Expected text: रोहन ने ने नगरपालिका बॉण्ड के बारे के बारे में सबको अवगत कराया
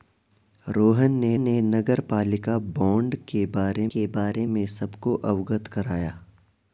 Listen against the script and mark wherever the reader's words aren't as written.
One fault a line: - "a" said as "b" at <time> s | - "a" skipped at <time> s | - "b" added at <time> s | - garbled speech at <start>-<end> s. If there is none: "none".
none